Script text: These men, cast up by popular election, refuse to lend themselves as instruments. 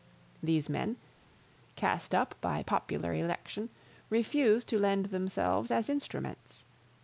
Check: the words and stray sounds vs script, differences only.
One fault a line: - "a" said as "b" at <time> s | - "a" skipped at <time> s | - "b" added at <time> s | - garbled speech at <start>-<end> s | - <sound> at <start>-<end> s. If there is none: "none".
none